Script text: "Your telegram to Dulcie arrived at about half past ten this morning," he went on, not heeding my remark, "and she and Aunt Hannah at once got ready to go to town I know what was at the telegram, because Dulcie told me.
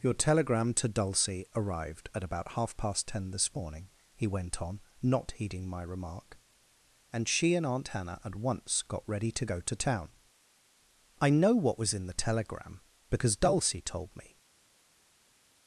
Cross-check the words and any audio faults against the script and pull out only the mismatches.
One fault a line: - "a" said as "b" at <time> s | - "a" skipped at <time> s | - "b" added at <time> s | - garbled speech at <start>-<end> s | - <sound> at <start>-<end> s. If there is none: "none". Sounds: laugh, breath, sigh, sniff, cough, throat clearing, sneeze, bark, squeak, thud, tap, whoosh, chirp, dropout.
- "at" said as "in" at 11.9 s